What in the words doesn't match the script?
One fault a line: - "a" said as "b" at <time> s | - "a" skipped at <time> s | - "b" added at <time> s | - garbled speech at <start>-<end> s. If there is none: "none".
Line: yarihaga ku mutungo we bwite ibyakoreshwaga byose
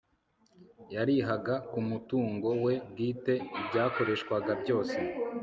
none